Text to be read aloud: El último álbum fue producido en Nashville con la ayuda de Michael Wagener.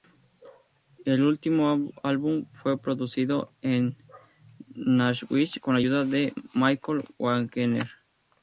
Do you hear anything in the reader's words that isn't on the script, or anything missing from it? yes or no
no